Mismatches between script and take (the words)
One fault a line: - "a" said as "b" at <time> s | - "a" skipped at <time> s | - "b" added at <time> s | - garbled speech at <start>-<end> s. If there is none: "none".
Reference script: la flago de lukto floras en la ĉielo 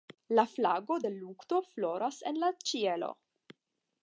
none